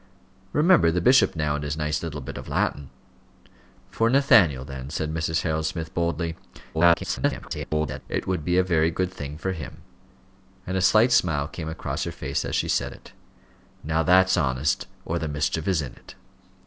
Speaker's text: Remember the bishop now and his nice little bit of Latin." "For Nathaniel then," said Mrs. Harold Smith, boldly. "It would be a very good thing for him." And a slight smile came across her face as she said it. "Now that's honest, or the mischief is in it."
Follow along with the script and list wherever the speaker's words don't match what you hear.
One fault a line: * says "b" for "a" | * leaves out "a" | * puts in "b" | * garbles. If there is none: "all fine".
* garbles